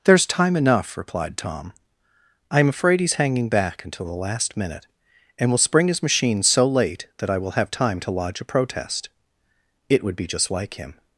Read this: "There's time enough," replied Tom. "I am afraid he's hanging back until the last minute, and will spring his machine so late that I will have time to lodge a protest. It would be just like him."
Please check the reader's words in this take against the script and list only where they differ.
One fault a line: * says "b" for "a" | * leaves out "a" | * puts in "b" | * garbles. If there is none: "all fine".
all fine